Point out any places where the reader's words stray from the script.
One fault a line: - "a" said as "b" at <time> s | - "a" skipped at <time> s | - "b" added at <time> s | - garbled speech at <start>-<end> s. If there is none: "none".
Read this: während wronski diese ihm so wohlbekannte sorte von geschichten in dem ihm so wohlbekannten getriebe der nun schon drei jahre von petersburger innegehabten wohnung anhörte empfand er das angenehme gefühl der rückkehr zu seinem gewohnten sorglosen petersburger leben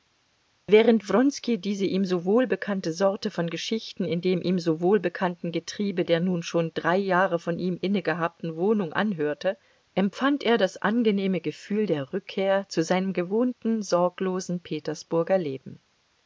- "petersburger" said as "ihm" at 7.6 s